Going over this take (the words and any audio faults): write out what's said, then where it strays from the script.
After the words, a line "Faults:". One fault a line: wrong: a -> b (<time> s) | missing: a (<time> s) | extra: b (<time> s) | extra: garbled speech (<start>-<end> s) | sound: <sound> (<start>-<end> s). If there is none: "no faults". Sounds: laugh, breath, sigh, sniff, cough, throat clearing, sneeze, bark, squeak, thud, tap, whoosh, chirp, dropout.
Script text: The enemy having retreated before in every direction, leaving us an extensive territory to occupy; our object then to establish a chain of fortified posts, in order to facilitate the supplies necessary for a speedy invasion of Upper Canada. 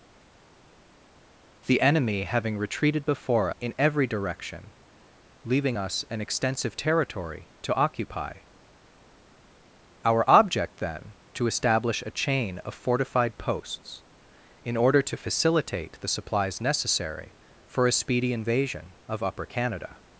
The enemy having retreated before in every direction, leaving us an extensive territory to occupy; our object then to establish a chain of fortified posts, in order to facilitate the supplies necessary for a speedy invasion of Upper Canada.
Faults:
no faults